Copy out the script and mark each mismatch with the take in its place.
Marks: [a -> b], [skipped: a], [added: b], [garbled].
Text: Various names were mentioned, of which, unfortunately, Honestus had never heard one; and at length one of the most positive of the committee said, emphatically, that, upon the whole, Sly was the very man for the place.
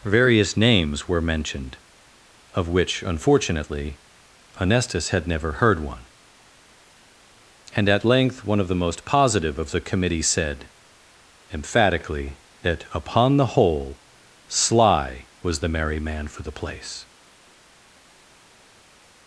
Various names were mentioned, of which, unfortunately, Honestus had never heard one; and at length one of the most positive of the committee said, emphatically, that, upon the whole, Sly was the [very -> merry] man for the place.